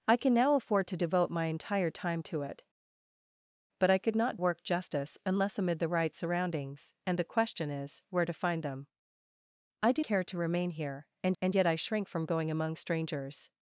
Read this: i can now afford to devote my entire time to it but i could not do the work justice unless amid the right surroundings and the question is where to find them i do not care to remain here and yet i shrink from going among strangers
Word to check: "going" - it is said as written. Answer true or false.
true